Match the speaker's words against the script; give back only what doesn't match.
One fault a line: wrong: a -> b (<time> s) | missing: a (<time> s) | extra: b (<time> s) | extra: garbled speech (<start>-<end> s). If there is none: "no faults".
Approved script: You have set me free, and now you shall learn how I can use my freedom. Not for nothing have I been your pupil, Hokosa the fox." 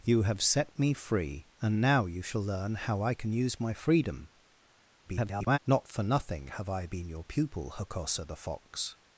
extra: garbled speech (5.0-5.6 s)